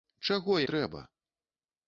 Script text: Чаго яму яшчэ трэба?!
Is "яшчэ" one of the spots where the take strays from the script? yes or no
yes